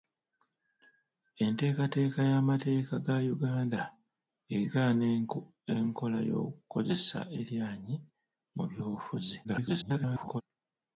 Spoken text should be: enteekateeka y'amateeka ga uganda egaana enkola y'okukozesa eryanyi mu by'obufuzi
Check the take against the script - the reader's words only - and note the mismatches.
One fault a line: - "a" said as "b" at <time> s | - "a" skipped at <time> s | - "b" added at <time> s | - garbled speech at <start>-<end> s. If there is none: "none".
- garbled speech at 9.4-10.4 s